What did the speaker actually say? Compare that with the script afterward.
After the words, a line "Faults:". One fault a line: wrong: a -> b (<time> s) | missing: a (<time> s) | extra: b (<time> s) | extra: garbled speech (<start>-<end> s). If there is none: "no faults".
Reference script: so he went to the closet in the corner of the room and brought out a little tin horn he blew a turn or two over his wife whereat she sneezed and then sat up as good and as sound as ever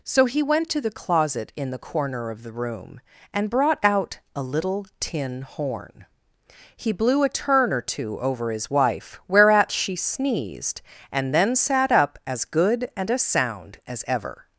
so he went to the closet in the corner of the room and brought out a little tin horn he blew a turn or two over his wife whereat she sneezed and then sat up as good and as sound as ever
Faults:
no faults